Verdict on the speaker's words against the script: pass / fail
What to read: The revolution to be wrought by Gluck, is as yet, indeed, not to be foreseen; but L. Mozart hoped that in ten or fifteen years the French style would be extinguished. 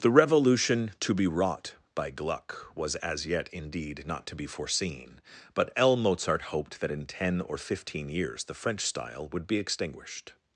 fail